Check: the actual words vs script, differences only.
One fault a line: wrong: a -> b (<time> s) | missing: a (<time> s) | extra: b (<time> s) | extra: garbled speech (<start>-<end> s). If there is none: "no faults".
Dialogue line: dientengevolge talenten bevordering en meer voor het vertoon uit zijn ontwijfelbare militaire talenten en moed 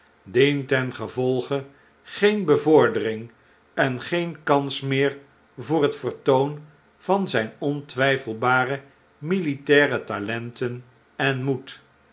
wrong: talenten -> geen (2.0 s)
extra: geen kans (4.0 s)
wrong: uit -> van (7.0 s)